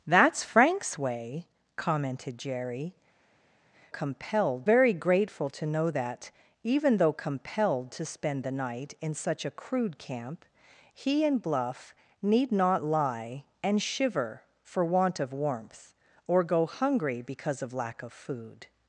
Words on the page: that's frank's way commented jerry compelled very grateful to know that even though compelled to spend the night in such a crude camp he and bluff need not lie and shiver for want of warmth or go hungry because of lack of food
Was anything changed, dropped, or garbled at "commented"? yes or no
no